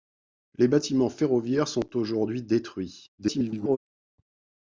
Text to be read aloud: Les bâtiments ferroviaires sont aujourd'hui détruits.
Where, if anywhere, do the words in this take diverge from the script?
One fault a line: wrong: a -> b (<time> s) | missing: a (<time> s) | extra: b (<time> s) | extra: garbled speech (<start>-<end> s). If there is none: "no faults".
extra: garbled speech (3.2-3.8 s)